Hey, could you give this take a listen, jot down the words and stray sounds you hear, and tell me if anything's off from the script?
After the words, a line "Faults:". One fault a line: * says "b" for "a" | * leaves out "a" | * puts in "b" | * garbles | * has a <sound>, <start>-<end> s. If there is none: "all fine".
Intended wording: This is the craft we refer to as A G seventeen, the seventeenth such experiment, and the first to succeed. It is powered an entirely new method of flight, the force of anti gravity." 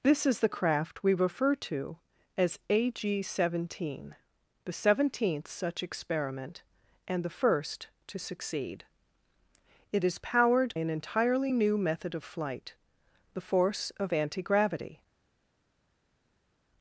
This is the craft we refer to as A G seventeen, the seventeenth such experiment, and the first to succeed. It is powered an entirely new method of flight, the force of anti gravity."
Faults:
all fine